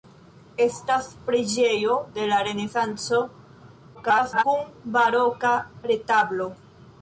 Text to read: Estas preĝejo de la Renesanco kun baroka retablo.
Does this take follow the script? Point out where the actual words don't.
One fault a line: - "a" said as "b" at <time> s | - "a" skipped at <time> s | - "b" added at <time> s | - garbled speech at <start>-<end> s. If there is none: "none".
- garbled speech at 3.9-4.4 s